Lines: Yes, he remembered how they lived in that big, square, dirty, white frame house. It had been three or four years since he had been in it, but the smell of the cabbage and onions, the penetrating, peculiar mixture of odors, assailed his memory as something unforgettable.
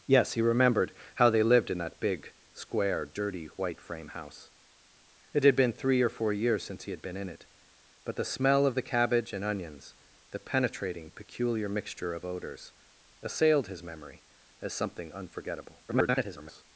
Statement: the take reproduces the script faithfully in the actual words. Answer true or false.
false